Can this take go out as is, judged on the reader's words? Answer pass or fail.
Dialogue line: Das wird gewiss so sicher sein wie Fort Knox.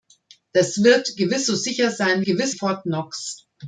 fail